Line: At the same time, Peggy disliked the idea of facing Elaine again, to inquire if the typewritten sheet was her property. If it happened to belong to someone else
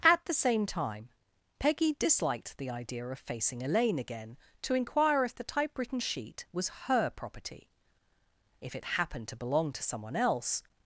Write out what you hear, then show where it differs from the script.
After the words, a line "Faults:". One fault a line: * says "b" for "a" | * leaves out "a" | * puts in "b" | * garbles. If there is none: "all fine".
At the same time, Peggy disliked the idea of facing Elaine again, to inquire if the typewritten sheet was her property. If it happened to belong to someone else
Faults:
all fine